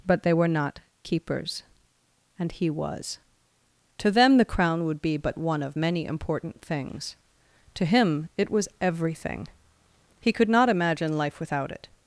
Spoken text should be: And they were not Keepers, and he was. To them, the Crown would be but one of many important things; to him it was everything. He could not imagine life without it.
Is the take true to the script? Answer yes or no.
no